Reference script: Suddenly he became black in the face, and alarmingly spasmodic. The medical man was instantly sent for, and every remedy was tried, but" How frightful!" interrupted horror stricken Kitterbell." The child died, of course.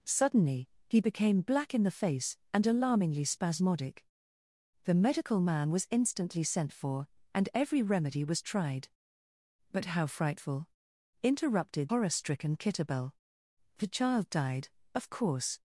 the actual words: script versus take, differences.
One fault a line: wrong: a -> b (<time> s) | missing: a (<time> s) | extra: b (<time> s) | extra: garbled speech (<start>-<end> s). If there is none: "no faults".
no faults